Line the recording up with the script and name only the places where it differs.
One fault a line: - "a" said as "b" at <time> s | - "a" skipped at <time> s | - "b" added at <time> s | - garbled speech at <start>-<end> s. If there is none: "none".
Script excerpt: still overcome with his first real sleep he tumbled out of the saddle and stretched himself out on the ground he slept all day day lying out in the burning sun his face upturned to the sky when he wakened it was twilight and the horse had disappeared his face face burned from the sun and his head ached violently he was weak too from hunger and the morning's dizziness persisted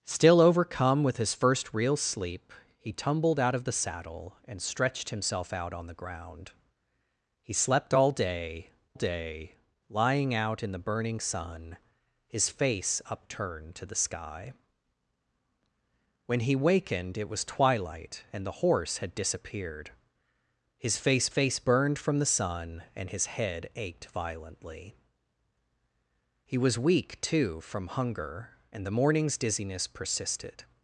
none